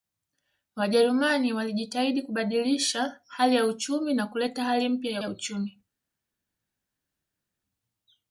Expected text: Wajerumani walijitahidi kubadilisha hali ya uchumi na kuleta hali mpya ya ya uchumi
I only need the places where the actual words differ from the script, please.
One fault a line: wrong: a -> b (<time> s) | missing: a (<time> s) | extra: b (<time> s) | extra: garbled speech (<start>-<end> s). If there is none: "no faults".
no faults